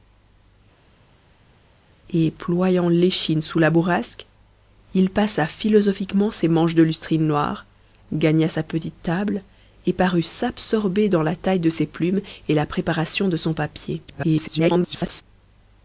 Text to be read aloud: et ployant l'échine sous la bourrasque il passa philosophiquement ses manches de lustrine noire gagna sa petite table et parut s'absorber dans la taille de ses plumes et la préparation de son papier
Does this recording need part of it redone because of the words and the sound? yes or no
yes